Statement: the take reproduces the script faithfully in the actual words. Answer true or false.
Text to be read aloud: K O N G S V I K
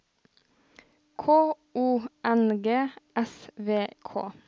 false